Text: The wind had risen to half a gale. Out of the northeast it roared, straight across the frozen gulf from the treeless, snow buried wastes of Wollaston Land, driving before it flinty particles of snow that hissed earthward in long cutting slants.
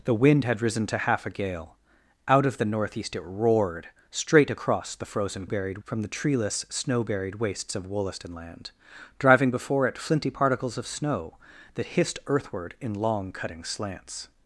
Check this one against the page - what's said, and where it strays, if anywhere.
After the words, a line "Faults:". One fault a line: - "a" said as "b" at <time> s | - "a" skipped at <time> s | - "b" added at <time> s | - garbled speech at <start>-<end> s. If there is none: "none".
The wind had risen to half a gale. Out of the northeast it roared, straight across the frozen buried from the treeless, snow buried wastes of Wollaston Land, driving before it flinty particles of snow that hissed earthward in long cutting slants.
Faults:
- "gulf" said as "buried" at 5.4 s